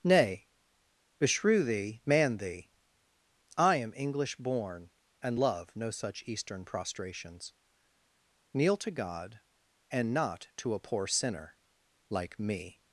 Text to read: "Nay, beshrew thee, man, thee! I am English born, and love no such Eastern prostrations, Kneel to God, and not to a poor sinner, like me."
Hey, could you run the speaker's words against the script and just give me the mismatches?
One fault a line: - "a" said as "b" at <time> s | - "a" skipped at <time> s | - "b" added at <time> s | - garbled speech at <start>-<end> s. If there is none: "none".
none